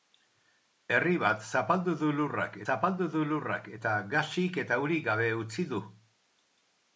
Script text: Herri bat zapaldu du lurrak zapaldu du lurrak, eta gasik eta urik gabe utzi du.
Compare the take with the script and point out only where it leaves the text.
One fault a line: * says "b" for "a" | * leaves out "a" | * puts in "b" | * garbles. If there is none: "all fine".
all fine